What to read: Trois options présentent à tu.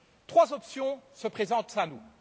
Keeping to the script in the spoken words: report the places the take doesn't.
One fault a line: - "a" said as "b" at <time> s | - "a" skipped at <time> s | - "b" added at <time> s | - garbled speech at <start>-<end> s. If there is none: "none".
- "se" added at 1.1 s
- "tu" said as "nous" at 1.8 s